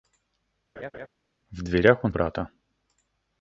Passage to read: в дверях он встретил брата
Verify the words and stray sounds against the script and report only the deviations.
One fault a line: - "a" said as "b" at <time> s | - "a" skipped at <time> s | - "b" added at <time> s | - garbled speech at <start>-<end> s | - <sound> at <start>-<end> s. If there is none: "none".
- laugh at 0.8-1.1 s
- "встретил" skipped at 2.1 s